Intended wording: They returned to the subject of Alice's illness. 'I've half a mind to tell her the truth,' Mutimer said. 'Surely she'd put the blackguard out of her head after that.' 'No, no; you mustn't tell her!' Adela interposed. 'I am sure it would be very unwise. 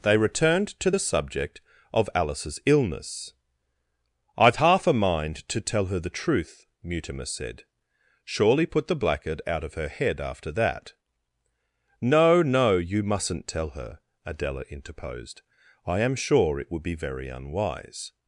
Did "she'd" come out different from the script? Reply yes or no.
yes